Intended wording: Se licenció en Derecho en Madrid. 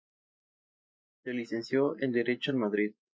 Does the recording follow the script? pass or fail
pass